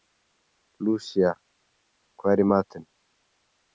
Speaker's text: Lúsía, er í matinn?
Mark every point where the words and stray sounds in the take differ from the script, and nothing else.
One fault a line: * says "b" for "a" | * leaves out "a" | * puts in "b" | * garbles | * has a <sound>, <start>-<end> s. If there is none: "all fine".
* puts in "hvað"